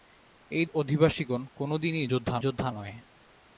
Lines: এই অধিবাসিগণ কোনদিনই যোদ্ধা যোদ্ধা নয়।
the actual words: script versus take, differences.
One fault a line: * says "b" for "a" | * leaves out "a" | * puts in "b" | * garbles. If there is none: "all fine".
all fine